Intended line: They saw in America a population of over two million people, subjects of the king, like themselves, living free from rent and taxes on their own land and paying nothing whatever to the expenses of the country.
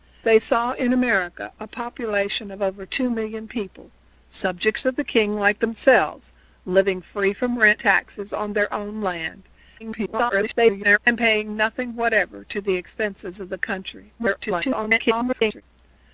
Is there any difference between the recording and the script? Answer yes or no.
yes